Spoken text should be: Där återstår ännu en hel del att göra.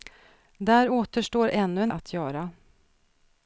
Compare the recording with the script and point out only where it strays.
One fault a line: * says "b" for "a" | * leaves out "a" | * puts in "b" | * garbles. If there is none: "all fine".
* leaves out "hel del"